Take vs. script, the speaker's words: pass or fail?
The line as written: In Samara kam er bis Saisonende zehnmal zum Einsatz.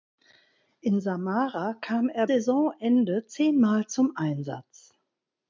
fail